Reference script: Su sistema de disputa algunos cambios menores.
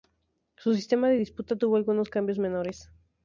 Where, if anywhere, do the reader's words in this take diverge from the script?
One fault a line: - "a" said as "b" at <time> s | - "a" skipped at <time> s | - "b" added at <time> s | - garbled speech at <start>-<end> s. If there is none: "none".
- "tuvo" added at 1.6 s